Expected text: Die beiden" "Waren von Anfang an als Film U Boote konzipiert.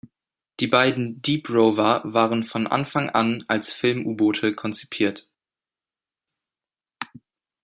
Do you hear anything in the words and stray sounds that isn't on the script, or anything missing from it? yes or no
yes